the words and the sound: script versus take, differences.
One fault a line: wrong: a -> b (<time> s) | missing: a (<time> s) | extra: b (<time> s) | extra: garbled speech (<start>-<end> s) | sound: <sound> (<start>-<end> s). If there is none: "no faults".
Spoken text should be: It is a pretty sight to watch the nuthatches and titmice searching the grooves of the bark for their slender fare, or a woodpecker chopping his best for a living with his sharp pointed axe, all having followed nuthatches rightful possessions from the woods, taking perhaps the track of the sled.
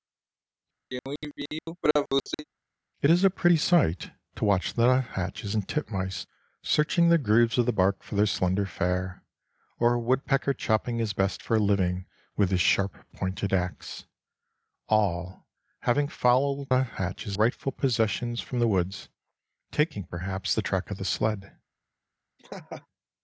sound: throat clearing (0.9-2.4 s)
sound: laugh (22.4-22.9 s)